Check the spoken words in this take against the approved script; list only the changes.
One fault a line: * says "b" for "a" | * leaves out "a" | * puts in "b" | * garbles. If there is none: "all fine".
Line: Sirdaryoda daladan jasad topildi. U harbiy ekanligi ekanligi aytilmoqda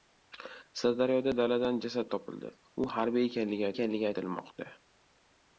all fine